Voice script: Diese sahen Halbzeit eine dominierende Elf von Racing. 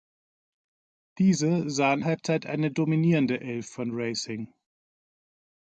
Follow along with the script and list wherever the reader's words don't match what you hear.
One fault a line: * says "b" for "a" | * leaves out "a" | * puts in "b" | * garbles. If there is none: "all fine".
all fine